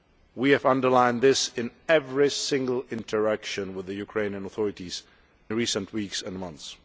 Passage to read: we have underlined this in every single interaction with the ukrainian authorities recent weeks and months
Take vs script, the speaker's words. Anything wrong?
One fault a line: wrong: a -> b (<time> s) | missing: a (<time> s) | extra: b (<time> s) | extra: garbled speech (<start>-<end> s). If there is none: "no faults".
no faults